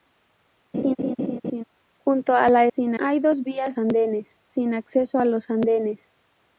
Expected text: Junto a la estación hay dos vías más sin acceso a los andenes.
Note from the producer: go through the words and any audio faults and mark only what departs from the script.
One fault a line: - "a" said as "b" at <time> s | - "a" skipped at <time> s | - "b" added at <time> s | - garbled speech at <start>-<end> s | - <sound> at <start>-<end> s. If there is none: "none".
- laugh at 0.7-1.6 s
- "estación" said as "sin" at 2.7 s
- "más" said as "andenes" at 3.8 s